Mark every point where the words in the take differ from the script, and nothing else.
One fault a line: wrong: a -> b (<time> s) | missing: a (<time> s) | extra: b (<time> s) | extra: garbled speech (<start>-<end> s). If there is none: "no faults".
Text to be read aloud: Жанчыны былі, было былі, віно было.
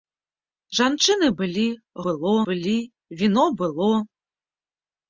no faults